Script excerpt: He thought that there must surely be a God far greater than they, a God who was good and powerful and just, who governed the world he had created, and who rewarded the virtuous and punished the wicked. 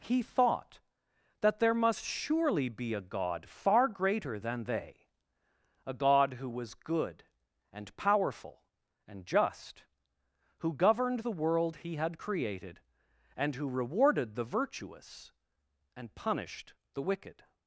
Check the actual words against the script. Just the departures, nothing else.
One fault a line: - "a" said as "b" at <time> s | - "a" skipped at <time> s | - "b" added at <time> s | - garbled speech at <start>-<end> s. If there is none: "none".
none